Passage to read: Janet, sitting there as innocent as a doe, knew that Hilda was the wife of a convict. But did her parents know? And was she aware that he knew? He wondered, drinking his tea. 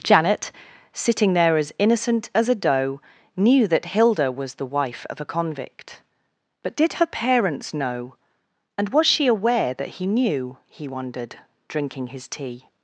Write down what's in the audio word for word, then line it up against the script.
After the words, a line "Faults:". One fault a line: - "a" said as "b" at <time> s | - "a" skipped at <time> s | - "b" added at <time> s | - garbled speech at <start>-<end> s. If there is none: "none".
Janet, sitting there as innocent as a doe, knew that Hilda was the wife of a convict. But did her parents know? And was she aware that he knew? He wondered, drinking his tea.
Faults:
none